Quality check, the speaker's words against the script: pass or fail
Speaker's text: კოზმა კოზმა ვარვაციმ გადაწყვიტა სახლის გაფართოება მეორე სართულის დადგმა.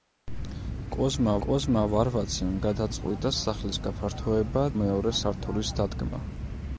pass